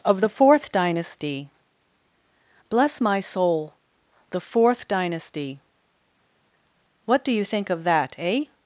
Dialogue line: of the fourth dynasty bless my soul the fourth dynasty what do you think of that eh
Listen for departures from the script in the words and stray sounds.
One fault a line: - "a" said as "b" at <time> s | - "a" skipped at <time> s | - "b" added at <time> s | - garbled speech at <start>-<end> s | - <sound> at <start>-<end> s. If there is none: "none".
none